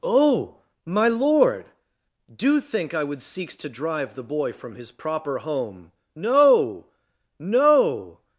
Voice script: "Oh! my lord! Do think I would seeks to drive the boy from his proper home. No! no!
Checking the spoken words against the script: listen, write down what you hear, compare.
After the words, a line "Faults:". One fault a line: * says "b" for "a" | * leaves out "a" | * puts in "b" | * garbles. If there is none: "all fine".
"Oh! my lord! Do think I would seeks to drive the boy from his proper home. No! no!
Faults:
all fine